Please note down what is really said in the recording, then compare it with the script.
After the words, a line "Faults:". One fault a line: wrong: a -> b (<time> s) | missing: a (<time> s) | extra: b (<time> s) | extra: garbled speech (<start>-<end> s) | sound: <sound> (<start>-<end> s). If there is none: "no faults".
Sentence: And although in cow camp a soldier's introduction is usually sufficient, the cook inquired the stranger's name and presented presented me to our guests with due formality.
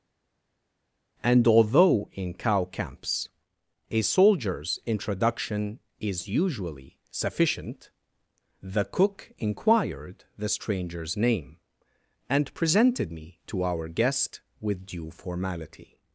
And although in cow camps a soldier's introduction is usually sufficient, the cook inquired the stranger's name and presented me to our guest with due formality.
Faults:
wrong: camp -> camps (2.7 s)
missing: presented (13.1 s)
wrong: guests -> guest (13.9 s)